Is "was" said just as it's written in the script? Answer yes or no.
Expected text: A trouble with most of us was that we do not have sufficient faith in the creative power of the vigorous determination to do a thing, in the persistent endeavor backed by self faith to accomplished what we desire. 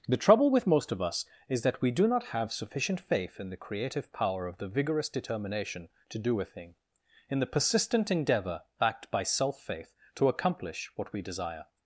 no